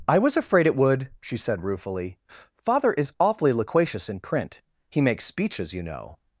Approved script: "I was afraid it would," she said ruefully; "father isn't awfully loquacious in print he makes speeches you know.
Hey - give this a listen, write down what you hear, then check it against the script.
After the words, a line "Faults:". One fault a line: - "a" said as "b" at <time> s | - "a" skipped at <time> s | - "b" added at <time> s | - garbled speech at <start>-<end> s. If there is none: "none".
"I was afraid it would," she said ruefully; "father is awfully loquacious in print he makes speeches you know.
Faults:
- "isn't" said as "is" at 2.9 s